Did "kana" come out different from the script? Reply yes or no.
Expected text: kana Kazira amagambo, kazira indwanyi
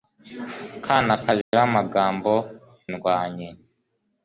no